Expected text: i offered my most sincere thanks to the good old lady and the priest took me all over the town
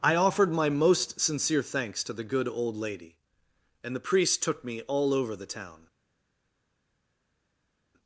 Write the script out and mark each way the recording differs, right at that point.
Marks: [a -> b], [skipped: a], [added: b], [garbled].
i offered my most sincere thanks to the good old lady and the priest took me all over the town